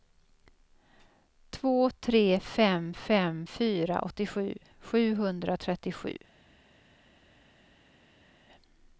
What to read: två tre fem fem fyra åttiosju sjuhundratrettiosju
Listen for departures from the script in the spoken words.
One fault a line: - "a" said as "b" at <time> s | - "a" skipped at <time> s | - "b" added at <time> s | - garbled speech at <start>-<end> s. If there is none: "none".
none